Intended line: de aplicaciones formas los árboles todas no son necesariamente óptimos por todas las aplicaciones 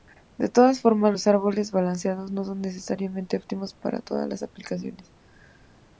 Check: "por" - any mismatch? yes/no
yes